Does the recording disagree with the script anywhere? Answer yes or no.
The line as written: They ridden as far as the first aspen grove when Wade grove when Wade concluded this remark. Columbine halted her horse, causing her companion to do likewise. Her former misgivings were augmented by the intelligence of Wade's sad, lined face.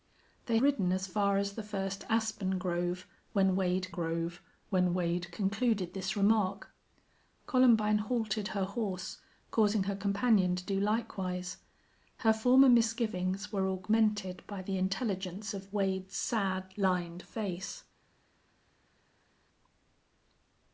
no